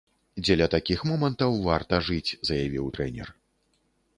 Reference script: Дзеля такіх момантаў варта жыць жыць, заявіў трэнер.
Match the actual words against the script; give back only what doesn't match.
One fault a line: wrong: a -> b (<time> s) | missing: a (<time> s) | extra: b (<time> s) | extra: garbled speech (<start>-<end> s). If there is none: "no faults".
missing: жыць (2.4 s)